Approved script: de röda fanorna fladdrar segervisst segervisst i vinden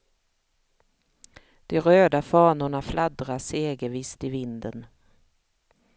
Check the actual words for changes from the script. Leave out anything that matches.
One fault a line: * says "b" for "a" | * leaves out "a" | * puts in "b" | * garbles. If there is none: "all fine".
* leaves out "segervisst"